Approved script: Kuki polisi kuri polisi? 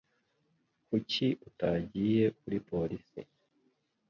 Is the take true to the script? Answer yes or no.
no